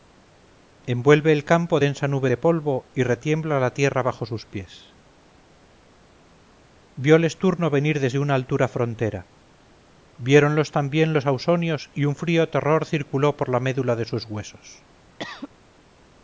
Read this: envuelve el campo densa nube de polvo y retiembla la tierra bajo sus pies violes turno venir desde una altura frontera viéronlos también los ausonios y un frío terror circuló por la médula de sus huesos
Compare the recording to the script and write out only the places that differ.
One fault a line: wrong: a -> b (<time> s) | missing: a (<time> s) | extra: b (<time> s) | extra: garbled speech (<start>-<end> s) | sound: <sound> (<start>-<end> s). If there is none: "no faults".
sound: cough (15.2-15.5 s)